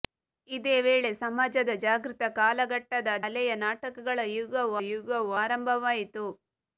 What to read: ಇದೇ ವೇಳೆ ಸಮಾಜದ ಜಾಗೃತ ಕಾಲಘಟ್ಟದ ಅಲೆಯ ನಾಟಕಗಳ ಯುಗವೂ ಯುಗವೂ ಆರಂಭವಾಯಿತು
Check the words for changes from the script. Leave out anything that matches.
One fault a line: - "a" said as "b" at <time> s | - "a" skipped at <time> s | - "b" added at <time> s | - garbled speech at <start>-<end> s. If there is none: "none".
none